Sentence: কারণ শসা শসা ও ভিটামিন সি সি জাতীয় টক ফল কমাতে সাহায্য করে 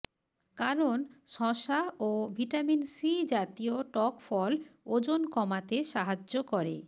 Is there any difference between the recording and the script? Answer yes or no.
yes